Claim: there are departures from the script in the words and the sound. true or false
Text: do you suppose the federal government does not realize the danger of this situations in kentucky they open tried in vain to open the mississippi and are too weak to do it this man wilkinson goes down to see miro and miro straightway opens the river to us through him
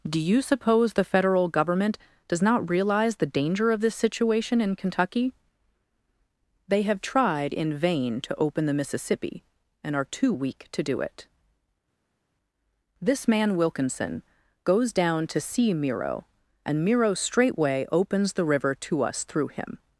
true